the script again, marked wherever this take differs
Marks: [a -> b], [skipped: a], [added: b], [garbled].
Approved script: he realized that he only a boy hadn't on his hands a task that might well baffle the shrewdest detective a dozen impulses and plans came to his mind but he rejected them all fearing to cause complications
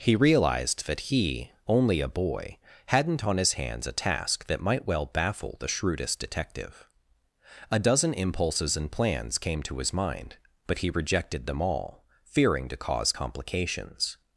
he realized that he only a boy hadn't on his hands a task that might well baffle the shrewdest detective a dozen impulses and plans came to his mind but he rejected them all fearing to cause complications